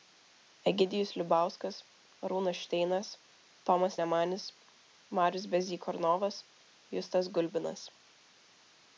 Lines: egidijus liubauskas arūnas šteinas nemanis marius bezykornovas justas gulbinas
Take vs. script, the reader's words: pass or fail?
fail